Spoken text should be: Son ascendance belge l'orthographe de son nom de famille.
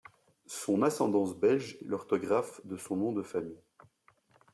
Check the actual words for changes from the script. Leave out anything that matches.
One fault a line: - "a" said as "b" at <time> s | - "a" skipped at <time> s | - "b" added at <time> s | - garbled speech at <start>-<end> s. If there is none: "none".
none